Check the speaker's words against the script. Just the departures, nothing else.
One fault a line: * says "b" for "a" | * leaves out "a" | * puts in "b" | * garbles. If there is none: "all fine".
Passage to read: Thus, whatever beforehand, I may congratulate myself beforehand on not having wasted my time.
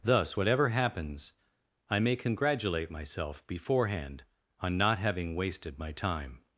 * says "happens" for "beforehand"